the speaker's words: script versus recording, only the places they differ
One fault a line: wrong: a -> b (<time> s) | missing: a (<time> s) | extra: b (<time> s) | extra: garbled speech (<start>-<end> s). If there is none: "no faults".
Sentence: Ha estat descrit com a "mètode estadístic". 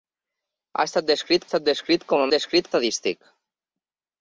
extra: estat descrit (1.5 s)
wrong: mètode -> descrit (2.3 s)